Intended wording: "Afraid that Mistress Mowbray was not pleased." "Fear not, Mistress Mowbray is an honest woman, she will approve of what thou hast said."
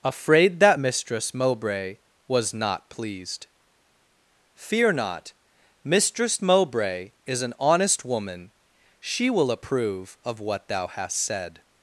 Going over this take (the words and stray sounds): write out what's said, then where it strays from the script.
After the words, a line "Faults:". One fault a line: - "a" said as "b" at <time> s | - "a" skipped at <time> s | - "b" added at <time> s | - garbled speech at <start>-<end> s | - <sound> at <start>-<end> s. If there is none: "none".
"Afraid that Mistress Mowbray was not pleased." "Fear not, Mistress Mowbray is an honest woman, she will approve of what thou hast said."
Faults:
none